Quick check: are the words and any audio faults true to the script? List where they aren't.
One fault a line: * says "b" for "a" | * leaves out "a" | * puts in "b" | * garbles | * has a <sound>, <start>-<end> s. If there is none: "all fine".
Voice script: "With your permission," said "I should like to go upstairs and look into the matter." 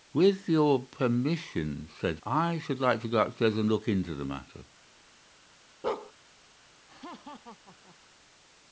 * has a bark, 5.8-6.1 s
* has a laugh, 6.9-8.0 s